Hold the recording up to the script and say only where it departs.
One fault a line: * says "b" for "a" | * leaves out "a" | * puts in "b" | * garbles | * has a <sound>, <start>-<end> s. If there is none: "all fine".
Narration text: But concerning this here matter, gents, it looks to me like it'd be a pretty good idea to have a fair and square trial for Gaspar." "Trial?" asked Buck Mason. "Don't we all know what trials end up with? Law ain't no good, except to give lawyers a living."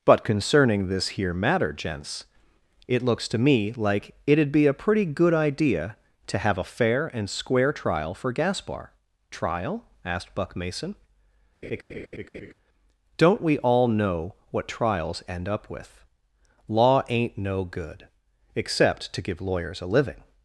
* has a laugh, 11.6-12.5 s